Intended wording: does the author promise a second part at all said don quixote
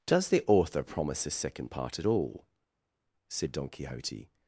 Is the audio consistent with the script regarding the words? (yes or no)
yes